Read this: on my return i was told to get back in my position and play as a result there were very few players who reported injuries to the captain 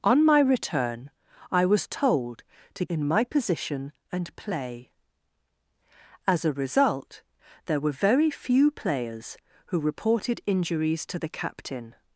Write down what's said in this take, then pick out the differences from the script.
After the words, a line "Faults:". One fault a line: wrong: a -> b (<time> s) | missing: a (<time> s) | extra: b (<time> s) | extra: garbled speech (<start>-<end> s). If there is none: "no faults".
on my return i was told to in my position and play as a result there were very few players who reported injuries to the captain
Faults:
missing: get back (2.9 s)